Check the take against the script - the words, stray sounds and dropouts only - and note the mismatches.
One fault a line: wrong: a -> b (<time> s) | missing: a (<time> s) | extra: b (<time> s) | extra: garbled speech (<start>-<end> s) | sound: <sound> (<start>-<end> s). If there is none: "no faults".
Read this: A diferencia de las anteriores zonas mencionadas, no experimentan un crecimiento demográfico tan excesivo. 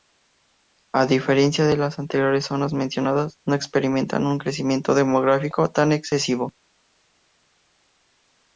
no faults